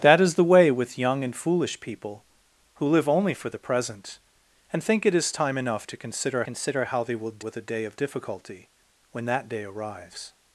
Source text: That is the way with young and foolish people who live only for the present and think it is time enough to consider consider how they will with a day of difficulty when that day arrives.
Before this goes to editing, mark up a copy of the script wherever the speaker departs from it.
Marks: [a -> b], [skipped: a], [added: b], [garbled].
That is the way with young and foolish people who live only for the present and think it is time enough to consider consider how they will with a day of difficulty when that day arrives.